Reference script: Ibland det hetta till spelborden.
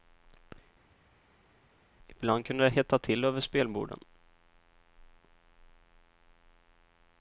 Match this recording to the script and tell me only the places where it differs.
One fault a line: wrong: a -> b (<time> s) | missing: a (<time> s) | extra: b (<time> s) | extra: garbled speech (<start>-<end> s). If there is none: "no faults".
extra: kunde (2.5 s)
extra: över (3.2 s)